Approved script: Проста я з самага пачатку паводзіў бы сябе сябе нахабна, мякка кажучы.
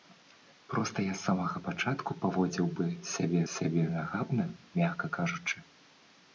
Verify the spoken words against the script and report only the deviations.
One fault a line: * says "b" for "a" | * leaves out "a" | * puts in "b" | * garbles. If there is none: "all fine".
all fine